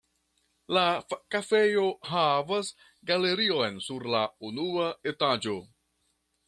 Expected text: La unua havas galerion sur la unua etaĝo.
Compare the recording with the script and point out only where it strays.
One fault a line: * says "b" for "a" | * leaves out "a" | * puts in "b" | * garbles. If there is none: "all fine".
* says "kafejo" for "unua"